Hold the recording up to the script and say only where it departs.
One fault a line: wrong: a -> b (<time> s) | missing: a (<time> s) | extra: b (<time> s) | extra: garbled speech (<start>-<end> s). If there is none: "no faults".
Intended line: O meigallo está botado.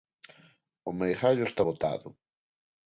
no faults